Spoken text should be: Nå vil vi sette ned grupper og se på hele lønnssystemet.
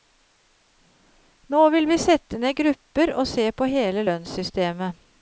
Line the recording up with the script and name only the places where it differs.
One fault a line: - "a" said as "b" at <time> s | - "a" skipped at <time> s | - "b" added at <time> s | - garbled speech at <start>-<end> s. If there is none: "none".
none